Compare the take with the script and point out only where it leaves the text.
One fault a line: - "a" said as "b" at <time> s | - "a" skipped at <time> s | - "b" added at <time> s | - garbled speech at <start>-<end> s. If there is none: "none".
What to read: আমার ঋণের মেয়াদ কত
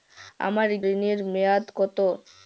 none